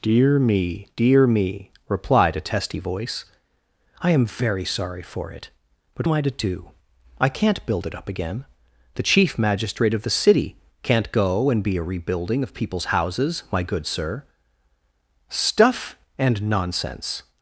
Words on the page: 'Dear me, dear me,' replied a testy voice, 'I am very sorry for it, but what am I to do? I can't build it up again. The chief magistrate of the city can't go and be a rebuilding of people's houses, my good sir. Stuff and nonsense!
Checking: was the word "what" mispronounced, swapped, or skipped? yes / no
yes